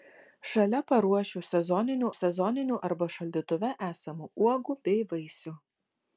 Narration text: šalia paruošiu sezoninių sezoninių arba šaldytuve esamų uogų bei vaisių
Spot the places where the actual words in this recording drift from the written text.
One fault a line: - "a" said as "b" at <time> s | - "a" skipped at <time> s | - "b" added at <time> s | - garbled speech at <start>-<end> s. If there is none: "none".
none